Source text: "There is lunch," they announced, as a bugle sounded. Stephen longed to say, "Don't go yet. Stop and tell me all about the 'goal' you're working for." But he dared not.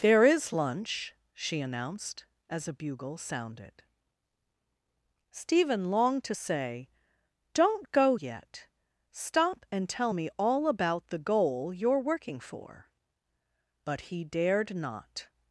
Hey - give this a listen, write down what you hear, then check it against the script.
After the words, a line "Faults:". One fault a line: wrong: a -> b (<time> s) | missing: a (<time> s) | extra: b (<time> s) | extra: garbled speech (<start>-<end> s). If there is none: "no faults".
"There is lunch," she announced, as a bugle sounded. Stephen longed to say, "Don't go yet. Stop and tell me all about the 'goal' you're working for." But he dared not.
Faults:
wrong: they -> she (1.3 s)